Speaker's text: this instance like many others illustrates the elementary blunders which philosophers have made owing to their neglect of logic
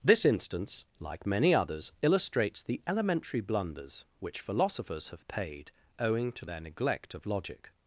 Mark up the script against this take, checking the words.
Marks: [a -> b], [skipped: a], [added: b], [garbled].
this instance like many others illustrates the elementary blunders which philosophers have [made -> paid] owing to their neglect of logic